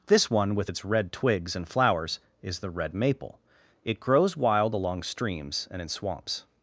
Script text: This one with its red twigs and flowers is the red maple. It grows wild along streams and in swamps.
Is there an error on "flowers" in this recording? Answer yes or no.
no